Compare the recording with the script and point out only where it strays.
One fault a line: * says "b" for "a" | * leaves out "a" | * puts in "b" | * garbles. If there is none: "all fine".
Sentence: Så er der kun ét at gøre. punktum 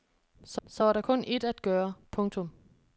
* puts in "så"